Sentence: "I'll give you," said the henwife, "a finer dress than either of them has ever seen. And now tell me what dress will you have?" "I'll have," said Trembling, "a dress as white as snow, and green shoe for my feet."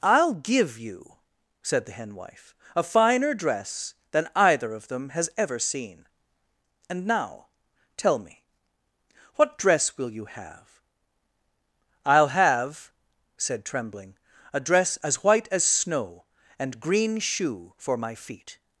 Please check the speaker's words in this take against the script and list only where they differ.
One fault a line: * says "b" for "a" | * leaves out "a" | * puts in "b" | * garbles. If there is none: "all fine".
all fine